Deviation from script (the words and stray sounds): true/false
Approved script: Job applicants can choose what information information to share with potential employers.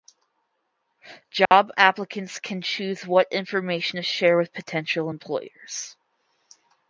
true